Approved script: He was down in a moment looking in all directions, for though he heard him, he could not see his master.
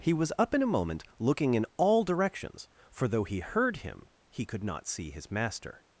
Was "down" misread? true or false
true